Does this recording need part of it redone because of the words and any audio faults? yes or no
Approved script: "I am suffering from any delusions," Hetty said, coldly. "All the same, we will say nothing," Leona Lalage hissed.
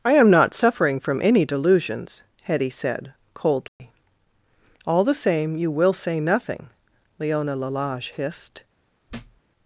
yes